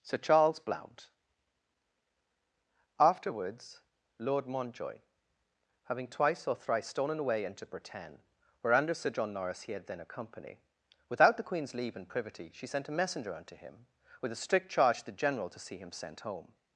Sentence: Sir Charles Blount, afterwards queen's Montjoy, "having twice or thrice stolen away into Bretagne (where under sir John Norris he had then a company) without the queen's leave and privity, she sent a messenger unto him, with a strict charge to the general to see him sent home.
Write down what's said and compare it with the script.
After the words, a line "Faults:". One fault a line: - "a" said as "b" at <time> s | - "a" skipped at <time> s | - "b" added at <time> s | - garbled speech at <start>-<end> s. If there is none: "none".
Sir Charles Blount, afterwards lord Montjoy, "having twice or thrice stolen away into Bretagne (where under sir John Norris he had then a company) without the queen's leave and privity, she sent a messenger unto him, with a strict charge to the general to see him sent home.
Faults:
- "queen's" said as "lord" at 4.2 s